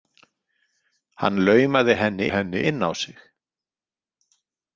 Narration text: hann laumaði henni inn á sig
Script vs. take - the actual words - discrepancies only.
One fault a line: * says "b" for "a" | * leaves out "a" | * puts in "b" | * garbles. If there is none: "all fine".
* puts in "henni"